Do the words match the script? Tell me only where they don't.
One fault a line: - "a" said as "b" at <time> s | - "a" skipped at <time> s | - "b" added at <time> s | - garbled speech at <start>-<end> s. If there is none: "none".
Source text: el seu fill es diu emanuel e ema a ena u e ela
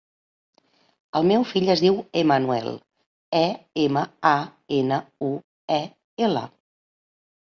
- "seu" said as "meu" at 1.3 s